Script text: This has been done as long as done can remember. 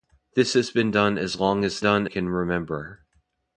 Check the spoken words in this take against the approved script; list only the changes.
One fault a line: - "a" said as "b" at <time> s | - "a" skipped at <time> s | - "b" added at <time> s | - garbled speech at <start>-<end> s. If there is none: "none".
none